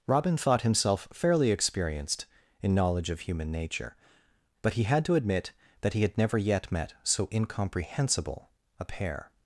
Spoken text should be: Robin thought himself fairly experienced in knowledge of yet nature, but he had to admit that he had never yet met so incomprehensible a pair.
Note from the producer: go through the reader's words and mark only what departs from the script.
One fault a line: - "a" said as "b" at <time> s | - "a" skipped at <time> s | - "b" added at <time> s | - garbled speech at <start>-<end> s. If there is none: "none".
- "yet" said as "human" at 3.2 s